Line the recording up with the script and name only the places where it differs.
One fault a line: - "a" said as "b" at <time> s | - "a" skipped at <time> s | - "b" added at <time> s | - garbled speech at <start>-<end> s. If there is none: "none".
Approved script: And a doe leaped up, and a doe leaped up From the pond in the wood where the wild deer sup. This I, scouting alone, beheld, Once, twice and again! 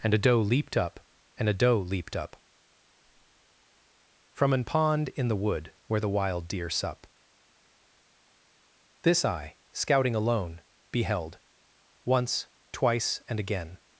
- "the" said as "an" at 4.5 s